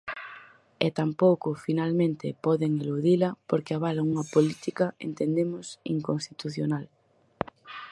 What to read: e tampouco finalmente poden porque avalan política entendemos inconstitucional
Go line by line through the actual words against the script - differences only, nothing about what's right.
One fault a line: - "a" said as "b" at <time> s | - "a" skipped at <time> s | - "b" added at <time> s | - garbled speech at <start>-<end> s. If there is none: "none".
- "eludila" added at 2.8 s
- "unha" added at 4.1 s